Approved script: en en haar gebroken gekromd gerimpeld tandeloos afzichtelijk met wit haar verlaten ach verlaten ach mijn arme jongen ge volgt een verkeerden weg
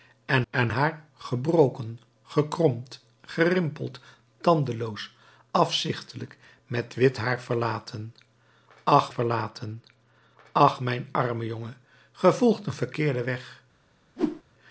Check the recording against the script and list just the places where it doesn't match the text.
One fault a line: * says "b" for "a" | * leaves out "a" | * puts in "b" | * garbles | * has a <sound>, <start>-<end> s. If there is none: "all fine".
* has a whoosh, 14.2-14.4 s